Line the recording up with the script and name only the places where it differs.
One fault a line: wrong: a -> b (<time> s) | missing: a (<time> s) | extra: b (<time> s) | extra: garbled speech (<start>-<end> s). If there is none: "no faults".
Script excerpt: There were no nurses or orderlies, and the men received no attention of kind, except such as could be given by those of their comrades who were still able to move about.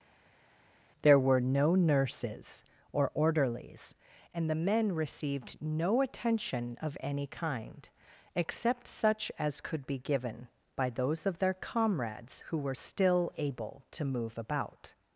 extra: any (7.0 s)